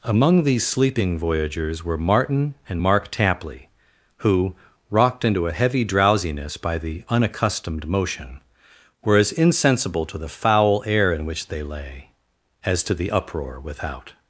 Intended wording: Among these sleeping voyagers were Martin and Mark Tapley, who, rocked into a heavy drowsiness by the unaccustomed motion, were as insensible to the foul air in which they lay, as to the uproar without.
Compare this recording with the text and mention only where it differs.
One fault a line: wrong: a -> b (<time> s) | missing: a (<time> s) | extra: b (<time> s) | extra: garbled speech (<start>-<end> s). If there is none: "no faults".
no faults